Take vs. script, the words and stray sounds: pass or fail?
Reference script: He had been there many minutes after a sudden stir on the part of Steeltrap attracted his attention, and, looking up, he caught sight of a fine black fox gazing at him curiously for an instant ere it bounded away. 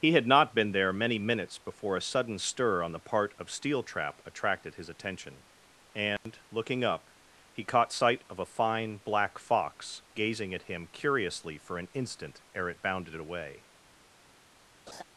fail